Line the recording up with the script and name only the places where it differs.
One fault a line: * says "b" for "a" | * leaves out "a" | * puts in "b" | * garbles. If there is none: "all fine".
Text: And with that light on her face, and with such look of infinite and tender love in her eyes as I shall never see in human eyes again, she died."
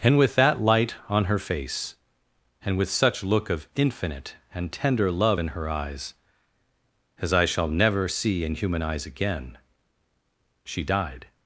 all fine